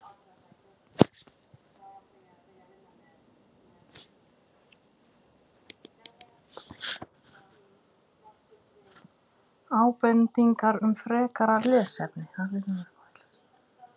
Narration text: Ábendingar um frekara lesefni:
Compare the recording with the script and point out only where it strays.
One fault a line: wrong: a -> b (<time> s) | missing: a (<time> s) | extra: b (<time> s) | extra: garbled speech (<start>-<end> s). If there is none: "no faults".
no faults